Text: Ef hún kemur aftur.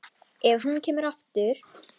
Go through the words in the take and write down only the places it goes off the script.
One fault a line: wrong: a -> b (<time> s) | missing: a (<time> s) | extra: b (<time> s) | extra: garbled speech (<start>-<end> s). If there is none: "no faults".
no faults